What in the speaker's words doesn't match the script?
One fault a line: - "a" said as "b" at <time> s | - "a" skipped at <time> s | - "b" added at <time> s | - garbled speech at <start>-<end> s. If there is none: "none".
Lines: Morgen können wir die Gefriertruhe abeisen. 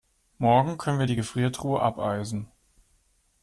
none